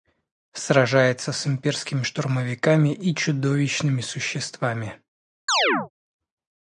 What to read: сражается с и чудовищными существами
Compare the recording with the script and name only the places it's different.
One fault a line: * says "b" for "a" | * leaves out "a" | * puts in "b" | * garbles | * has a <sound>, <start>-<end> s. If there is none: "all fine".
* puts in "имперскими штурмовиками"
* has a chirp, 5.5-5.9 s